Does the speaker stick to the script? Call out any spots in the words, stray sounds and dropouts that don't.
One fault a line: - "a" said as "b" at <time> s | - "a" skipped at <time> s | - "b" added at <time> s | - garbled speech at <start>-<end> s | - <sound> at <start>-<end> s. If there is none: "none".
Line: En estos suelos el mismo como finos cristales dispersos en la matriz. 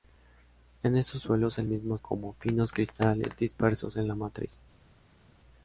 none